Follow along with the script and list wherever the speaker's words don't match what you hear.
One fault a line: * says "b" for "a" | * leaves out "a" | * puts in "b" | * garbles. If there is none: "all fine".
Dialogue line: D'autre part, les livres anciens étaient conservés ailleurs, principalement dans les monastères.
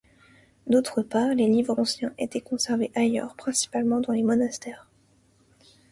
all fine